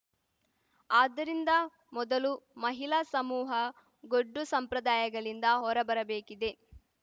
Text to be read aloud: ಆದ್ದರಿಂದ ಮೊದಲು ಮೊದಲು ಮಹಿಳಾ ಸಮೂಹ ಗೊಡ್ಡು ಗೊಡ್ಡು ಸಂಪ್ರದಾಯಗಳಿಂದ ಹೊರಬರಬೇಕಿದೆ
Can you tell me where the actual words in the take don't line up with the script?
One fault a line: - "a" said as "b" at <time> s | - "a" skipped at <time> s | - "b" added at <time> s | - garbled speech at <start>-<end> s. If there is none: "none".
- "ಮೊದಲು" skipped at 2.3 s
- "ಗೊಡ್ಡು" skipped at 4.4 s